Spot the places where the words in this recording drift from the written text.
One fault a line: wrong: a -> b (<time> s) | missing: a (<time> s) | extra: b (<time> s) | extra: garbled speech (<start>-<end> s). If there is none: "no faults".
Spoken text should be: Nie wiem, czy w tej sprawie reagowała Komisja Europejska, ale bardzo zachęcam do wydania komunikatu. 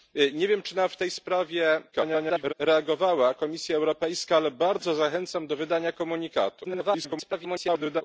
extra: garbled speech (1.9-2.5 s)
extra: garbled speech (6.6-8.0 s)